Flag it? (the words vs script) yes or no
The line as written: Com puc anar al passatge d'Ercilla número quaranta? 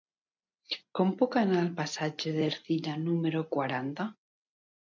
no